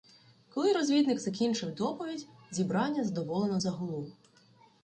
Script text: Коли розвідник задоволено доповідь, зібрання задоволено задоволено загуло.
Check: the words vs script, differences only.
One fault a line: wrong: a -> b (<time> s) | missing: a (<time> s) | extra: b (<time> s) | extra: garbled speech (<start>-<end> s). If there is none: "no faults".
wrong: задоволено -> закінчив (1.2 s)
missing: задоволено (3.6 s)